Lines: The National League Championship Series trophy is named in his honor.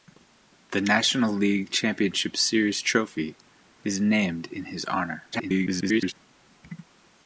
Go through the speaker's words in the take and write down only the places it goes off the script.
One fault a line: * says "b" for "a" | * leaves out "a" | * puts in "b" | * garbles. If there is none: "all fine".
* garbles